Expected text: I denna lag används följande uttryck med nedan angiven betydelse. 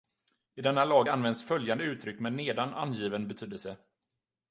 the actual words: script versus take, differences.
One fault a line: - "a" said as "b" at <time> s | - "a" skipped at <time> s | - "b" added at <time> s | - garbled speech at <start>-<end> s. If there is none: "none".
none